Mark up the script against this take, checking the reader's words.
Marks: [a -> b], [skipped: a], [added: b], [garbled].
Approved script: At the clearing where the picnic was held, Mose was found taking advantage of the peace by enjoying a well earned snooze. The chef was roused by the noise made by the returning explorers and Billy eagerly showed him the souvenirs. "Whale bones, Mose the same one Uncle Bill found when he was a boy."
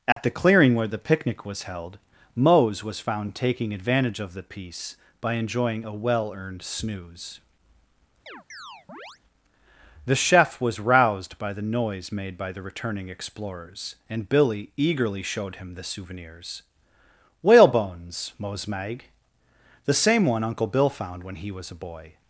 At the clearing where the picnic was held, Mose was found taking advantage of the peace by enjoying a well earned snooze. The chef was roused by the noise made by the returning explorers and Billy eagerly showed him the souvenirs. "Whale bones, Mose [added: mag] the same one Uncle Bill found when he was a boy."